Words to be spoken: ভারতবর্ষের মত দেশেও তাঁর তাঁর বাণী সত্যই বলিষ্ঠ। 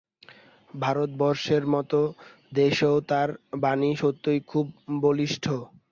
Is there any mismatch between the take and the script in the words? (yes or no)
yes